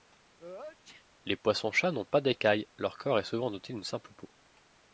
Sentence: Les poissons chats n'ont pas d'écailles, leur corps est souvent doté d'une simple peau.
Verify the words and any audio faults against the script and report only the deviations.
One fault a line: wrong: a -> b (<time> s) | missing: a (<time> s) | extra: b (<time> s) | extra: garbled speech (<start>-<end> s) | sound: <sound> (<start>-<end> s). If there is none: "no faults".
sound: sneeze (0.4-1.1 s)